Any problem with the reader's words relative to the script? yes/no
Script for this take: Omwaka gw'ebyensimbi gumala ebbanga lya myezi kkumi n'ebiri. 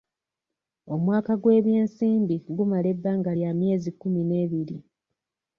no